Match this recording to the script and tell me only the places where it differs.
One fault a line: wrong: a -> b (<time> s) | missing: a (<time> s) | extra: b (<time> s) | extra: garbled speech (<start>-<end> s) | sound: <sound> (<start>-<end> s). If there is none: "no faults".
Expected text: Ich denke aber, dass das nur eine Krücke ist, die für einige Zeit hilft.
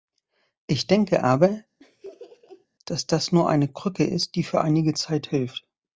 sound: laugh (1.8-2.7 s)